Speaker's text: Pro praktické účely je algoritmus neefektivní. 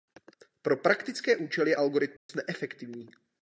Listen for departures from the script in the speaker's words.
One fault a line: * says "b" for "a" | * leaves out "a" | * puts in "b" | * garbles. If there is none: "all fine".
all fine